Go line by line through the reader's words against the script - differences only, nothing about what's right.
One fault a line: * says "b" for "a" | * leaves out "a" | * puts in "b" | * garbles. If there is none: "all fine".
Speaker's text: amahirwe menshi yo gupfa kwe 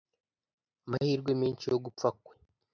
all fine